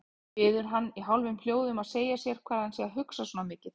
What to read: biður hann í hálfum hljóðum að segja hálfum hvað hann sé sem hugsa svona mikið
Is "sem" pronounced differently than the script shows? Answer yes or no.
yes